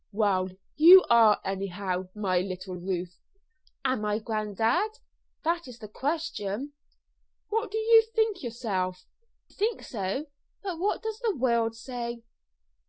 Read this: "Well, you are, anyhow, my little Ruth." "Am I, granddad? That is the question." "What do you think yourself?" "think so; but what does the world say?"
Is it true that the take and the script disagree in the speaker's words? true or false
false